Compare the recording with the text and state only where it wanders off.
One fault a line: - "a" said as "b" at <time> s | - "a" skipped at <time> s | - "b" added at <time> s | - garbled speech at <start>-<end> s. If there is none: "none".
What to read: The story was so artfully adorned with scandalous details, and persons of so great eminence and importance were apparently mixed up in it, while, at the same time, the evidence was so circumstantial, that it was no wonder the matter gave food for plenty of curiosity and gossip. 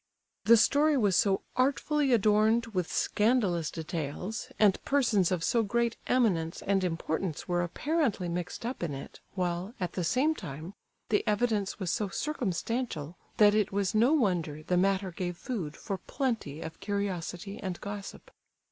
none